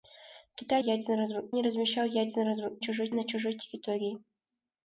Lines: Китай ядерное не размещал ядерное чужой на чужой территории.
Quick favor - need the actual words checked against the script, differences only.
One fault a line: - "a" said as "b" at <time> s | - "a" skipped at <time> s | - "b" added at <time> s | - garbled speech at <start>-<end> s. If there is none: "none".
none